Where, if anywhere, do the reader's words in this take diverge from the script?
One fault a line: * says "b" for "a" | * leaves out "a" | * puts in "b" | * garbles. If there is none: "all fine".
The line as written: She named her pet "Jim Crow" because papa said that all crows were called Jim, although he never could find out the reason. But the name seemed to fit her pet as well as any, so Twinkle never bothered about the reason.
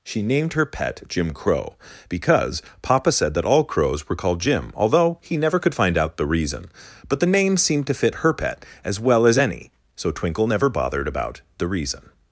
all fine